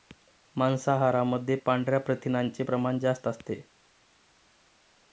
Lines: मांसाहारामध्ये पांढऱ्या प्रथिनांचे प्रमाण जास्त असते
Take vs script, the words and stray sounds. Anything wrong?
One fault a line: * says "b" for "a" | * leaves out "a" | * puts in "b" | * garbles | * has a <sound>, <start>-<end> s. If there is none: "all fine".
all fine